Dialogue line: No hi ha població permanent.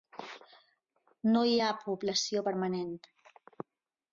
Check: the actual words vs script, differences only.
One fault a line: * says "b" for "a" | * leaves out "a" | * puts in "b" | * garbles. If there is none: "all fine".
all fine